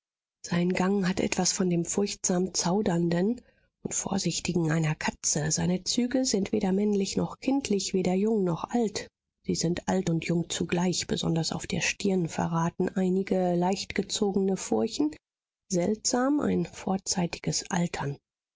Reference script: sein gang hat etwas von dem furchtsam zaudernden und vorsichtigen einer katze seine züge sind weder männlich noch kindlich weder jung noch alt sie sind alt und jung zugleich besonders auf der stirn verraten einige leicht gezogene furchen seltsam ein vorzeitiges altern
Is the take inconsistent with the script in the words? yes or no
no